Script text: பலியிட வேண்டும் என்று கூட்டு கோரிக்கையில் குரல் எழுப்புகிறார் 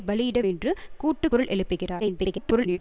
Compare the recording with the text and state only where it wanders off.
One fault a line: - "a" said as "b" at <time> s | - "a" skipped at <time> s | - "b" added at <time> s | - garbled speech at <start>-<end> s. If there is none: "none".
- "வேண்டும்" skipped at 0.4 s
- "கோரிக்கையில்" skipped at 1.3 s
- garbled speech at 2.0-2.8 s